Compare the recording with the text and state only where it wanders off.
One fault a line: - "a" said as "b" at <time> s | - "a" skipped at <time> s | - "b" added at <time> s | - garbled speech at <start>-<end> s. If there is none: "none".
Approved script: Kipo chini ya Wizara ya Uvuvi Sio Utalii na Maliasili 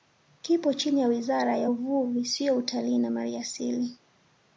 none